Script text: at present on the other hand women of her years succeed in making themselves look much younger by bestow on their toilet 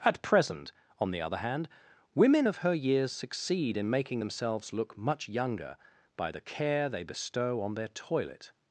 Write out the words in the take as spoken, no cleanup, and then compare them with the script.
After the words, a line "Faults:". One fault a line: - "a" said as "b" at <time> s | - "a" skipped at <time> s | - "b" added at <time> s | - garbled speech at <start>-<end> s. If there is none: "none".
at present on the other hand women of her years succeed in making themselves look much younger by the care they bestow on their toilet
Faults:
- "the care they" added at 6.3 s